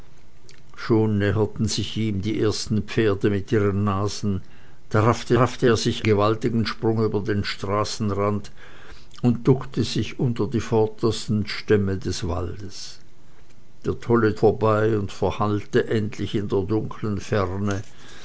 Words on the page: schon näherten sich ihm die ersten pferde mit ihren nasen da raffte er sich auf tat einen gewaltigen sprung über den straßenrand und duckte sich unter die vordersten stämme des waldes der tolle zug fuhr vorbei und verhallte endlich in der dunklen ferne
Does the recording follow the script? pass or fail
fail